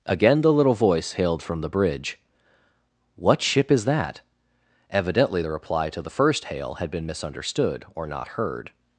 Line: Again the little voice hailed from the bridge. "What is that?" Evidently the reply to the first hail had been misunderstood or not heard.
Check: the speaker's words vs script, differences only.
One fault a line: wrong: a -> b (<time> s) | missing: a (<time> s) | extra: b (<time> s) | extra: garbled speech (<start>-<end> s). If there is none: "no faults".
extra: ship (3.4 s)